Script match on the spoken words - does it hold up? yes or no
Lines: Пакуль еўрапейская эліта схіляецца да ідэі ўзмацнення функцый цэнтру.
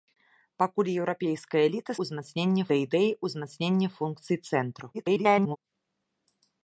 no